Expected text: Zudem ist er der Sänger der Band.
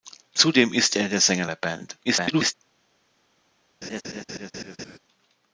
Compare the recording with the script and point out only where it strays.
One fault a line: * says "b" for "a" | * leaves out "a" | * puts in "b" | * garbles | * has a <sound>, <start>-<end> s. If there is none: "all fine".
* garbles
* has a laugh, 3.8-5.0 s